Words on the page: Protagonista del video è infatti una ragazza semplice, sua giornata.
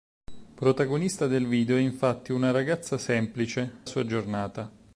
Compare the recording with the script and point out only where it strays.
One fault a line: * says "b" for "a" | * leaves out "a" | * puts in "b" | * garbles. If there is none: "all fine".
all fine